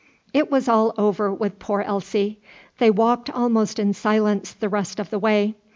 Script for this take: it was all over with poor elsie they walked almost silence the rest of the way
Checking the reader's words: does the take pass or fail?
fail